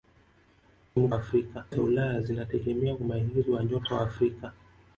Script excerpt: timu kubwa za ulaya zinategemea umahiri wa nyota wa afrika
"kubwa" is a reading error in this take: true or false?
true